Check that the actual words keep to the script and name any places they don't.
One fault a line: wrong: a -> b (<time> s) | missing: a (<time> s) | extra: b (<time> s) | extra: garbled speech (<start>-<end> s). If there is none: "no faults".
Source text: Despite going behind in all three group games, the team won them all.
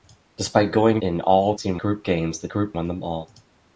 missing: behind (1.0 s)
wrong: three -> team (1.5 s)
wrong: team -> group (2.5 s)